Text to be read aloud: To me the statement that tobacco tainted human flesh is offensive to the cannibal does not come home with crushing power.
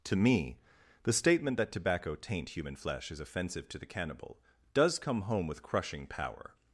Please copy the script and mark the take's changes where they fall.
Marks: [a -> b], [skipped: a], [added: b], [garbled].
To me the statement that tobacco [tainted -> taint] human flesh is offensive to the cannibal does [skipped: not] come home with crushing power.